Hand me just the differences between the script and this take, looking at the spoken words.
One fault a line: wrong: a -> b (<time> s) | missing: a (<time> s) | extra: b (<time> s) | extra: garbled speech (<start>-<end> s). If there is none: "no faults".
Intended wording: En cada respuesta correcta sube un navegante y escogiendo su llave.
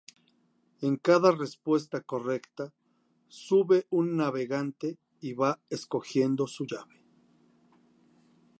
extra: va (5.3 s)